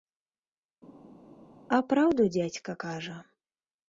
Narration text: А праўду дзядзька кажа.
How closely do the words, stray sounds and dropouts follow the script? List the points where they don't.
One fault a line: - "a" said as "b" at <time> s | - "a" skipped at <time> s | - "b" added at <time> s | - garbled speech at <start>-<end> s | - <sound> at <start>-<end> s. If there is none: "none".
none